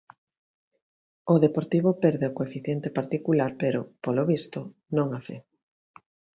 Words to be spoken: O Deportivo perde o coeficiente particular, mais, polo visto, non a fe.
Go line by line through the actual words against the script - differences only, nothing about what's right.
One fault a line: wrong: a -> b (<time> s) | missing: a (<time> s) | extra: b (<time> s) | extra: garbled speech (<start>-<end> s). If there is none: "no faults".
wrong: mais -> pero (3.6 s)